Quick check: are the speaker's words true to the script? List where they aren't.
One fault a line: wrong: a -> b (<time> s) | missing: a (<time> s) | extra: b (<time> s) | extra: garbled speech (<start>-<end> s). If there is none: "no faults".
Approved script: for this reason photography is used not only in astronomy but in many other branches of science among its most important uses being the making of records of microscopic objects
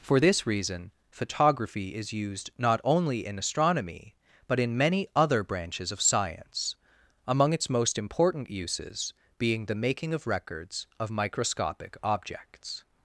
no faults